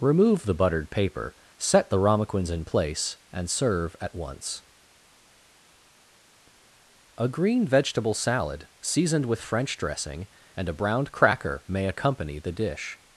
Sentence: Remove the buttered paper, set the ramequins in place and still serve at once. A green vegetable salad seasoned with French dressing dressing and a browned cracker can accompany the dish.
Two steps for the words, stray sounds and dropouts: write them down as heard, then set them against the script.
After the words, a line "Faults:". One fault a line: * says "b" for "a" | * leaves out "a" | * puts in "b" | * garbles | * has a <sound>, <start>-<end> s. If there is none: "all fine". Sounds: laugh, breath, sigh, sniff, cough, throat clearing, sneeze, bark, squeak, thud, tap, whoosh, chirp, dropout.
Remove the buttered paper, set the ramequins in place and serve at once. A green vegetable salad seasoned with French dressing and a browned cracker may accompany the dish.
Faults:
* leaves out "still"
* leaves out "dressing"
* says "may" for "can"